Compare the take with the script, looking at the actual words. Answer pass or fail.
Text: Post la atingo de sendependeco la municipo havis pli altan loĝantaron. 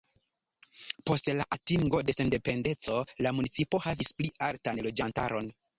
pass